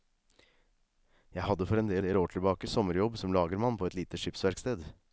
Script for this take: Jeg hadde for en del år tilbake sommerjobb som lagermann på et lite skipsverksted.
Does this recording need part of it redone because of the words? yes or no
yes